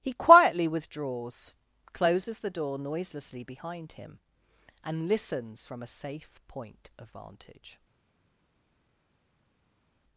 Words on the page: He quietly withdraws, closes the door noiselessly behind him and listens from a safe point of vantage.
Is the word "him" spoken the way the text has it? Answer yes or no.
yes